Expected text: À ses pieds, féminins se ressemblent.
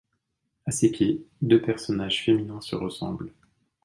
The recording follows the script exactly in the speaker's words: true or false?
false